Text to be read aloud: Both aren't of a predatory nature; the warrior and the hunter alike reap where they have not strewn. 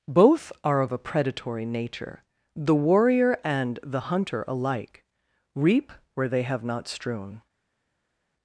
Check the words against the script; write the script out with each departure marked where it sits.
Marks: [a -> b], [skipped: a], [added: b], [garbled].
Both [aren't -> are] of a predatory nature; the warrior and the hunter alike reap where they have not strewn.